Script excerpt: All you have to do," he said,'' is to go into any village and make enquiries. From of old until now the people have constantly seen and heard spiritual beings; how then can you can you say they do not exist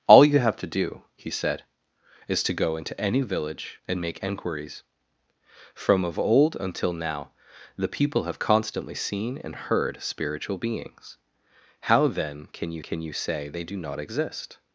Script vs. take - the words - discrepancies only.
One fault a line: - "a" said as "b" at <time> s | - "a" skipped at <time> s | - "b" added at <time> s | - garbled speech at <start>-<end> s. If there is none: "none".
none